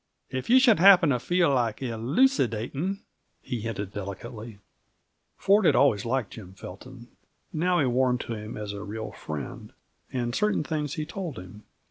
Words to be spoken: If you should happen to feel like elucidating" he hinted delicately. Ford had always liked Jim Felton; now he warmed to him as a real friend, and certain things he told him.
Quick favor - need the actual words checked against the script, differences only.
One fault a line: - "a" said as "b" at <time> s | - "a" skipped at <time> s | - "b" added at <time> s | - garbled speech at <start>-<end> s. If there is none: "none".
none